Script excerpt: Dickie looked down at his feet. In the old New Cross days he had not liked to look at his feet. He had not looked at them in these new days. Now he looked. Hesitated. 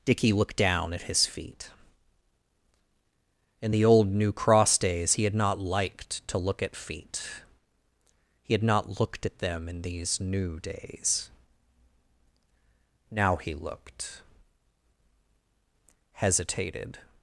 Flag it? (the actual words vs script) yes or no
yes